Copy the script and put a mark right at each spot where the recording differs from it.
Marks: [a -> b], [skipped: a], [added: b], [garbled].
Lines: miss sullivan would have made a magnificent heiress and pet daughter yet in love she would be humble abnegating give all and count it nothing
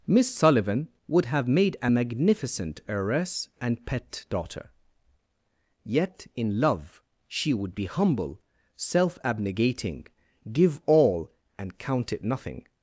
miss sullivan would have made a magnificent heiress and pet daughter yet in love she would be humble [added: self] abnegating give all and count it nothing